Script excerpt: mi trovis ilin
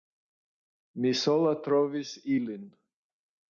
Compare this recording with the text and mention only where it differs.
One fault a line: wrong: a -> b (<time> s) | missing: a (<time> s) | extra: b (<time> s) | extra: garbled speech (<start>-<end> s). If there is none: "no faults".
extra: sola (1.2 s)